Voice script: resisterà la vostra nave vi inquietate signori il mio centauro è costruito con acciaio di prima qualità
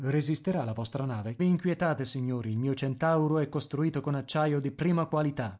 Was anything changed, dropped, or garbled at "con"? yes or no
no